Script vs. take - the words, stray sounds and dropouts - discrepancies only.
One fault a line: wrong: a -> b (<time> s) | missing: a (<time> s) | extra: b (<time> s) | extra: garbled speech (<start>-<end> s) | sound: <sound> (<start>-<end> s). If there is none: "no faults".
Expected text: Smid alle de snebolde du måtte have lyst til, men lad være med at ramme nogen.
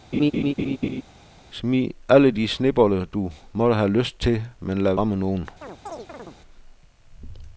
sound: laugh (0.1-1.0 s)
missing: være med at (4.9 s)
sound: chirp (5.6-6.4 s)